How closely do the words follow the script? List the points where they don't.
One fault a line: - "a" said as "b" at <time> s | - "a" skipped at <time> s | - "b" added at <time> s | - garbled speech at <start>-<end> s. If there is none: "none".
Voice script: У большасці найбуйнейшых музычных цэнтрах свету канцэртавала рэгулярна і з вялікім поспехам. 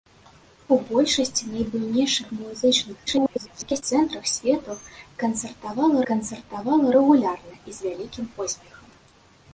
- garbled speech at 3.1-3.8 s
- "канцэртавала" added at 6.1 s